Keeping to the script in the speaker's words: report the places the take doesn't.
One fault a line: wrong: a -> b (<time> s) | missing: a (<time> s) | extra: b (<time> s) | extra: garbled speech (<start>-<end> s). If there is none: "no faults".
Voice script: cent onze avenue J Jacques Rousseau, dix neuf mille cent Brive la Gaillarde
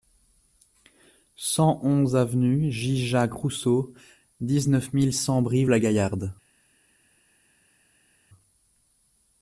no faults